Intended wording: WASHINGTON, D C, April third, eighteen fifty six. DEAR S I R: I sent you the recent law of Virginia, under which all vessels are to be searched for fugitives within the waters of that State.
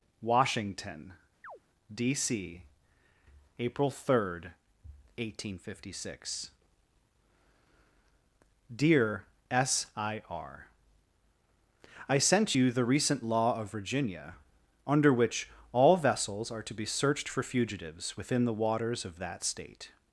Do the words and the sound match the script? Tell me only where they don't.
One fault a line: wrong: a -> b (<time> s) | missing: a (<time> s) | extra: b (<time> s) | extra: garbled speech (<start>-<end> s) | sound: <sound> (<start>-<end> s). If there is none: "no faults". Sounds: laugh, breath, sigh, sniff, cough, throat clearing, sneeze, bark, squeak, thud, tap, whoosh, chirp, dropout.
sound: chirp (1.4-1.6 s)